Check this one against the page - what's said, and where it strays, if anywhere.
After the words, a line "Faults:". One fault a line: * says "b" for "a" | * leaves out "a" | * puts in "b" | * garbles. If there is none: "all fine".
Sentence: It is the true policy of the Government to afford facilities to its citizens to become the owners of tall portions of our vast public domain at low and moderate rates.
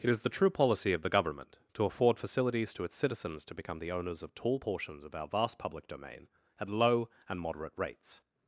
It is the true policy of the Government to afford facilities to its citizens to become the owners of tall portions of our vast public domain at low and moderate rates.
Faults:
all fine